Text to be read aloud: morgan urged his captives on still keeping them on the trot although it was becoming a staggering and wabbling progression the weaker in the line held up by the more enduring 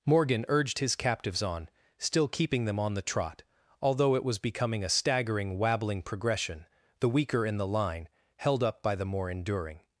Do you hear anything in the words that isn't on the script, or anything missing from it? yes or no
yes